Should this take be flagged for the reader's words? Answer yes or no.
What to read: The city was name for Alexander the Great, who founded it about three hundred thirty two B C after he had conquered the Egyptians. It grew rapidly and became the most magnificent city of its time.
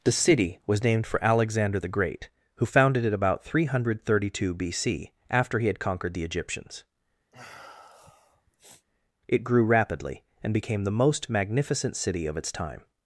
yes